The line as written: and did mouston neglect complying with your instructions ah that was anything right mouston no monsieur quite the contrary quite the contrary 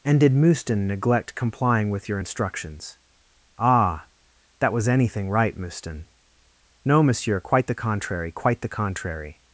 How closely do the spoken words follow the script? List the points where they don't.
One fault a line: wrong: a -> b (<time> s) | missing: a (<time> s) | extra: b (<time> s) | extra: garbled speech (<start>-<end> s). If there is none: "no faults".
no faults